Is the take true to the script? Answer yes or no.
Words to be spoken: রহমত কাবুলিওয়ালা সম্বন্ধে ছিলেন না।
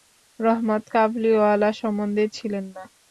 yes